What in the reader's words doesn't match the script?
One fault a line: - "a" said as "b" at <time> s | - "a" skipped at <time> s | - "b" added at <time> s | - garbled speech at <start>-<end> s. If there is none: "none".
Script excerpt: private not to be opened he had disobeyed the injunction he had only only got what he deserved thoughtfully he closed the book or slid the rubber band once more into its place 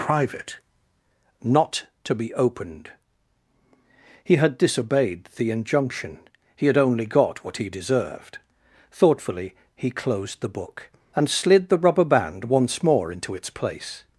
- "only" skipped at 7.0 s
- "or" said as "and" at 11.2 s